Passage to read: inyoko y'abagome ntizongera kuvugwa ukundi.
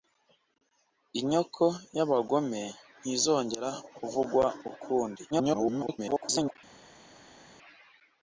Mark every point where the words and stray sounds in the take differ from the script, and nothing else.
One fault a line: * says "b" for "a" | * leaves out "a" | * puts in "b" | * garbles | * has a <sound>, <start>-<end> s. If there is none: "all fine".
* garbles